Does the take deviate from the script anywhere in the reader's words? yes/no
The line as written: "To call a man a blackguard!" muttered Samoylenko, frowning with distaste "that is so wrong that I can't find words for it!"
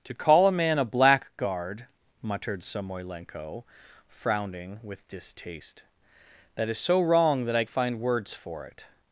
yes